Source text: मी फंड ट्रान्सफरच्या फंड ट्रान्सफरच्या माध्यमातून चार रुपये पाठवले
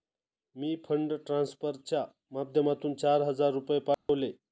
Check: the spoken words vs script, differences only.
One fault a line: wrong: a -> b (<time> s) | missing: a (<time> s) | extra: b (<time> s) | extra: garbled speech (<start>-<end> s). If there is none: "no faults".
missing: फंड ट्रान्सफरच्या (2.0 s)
extra: हजार (3.2 s)